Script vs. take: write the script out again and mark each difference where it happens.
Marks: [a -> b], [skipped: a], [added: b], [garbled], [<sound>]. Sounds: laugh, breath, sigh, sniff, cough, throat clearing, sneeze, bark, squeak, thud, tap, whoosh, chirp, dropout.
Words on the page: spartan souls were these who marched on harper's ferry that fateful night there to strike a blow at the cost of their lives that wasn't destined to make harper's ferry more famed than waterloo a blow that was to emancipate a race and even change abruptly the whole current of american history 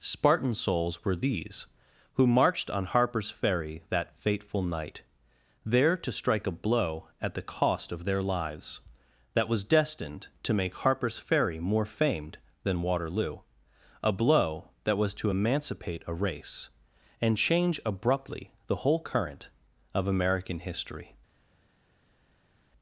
spartan souls were these who marched on harper's ferry that fateful night there to strike a blow at the cost of their lives that [wasn't -> was] destined to make harper's ferry more famed than waterloo a blow that was to emancipate a race and [skipped: even] change abruptly the whole current of american history